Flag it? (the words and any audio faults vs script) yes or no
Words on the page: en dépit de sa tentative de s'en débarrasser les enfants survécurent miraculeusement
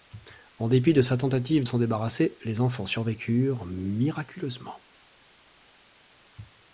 yes